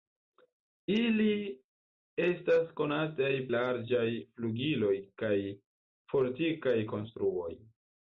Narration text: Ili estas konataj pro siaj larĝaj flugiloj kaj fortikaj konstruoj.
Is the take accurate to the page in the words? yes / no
no